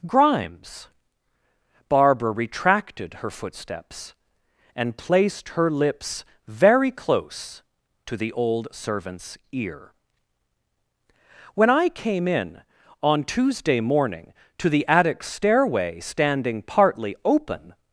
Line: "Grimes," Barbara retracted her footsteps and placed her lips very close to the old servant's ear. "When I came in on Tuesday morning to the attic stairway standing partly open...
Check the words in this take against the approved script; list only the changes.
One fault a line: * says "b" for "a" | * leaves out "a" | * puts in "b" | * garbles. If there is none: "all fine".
all fine